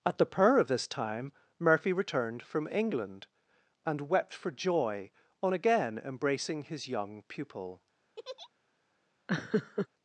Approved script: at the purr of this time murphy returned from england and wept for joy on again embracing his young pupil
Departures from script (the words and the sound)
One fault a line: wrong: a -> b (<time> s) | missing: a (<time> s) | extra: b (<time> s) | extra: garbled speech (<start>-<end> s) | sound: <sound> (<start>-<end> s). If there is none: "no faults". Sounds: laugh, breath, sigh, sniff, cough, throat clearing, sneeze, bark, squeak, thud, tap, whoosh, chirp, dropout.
sound: laugh (8.2-8.5 s)
sound: laugh (9.3-9.9 s)